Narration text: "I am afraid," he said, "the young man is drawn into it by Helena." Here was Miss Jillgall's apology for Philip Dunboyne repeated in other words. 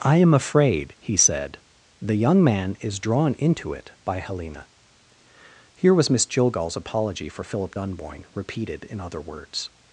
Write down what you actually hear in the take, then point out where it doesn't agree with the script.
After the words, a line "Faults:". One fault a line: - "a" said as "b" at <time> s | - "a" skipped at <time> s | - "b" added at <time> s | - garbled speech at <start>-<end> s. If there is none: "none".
"I am afraid," he said, "the young man is drawn into it by Helena." Here was Miss Jillgall's apology for Philip Dunboyne repeated in other words.
Faults:
none